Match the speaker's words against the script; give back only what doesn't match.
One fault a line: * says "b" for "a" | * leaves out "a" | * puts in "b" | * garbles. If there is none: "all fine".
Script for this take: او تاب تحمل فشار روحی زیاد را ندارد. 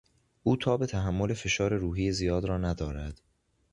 all fine